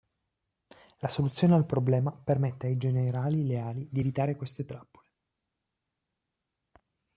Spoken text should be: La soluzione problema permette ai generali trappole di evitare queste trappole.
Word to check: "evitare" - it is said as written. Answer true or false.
true